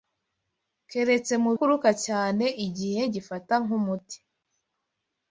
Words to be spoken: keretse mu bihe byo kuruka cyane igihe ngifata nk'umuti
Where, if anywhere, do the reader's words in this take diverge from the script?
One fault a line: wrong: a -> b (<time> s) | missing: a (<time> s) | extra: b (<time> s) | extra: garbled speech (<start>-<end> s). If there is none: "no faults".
missing: bihe byo (1.5 s)